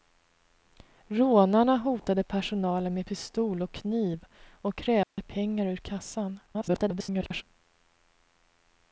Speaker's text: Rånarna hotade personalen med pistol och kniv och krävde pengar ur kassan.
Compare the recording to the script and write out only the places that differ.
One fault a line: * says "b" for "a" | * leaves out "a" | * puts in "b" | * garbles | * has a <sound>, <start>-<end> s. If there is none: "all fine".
* has a dropout, 5.0-5.2 s
* garbles